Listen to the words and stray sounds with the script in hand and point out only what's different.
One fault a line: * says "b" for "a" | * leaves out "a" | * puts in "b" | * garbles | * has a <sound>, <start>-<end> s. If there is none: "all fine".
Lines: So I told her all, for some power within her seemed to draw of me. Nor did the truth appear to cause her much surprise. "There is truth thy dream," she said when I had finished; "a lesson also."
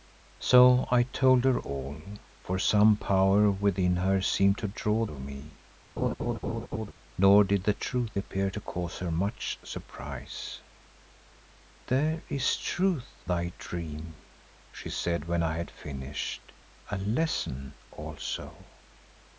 * has a laugh, 6.0-6.9 s